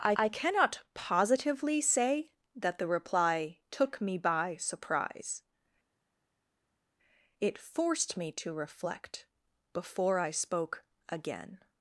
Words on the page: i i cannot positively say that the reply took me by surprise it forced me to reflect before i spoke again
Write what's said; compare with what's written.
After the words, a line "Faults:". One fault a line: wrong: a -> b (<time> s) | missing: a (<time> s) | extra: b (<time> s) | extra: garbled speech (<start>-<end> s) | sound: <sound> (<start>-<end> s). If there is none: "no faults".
i i cannot positively say that the reply took me by surprise it forced me to reflect before i spoke again
Faults:
no faults